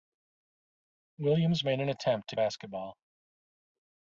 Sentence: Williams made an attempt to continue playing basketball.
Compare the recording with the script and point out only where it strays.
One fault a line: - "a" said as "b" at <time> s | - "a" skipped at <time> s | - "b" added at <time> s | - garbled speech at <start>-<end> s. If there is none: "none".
- "continue playing" skipped at 2.4 s